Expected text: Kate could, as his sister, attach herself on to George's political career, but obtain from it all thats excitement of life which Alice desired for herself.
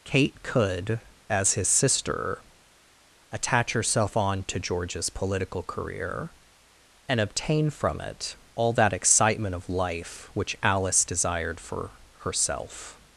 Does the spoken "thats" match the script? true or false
false